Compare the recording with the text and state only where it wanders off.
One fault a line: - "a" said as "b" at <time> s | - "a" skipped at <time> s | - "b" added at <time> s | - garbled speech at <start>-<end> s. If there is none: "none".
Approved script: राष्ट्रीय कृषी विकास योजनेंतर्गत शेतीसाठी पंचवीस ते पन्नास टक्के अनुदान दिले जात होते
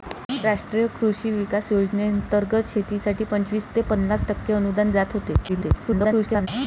- "दिले" skipped at 4.9 s
- garbled speech at 5.5-6.5 s